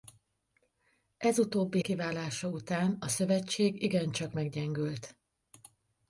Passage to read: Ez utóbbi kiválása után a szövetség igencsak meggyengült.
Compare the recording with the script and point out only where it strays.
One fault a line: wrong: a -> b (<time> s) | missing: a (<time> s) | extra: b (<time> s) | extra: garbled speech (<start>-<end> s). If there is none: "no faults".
no faults